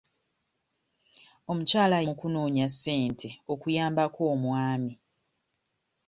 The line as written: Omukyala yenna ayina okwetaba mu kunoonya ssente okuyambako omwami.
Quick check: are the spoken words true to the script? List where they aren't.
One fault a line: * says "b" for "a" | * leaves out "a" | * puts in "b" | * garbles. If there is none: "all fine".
* leaves out "yenna ayina okwetaba"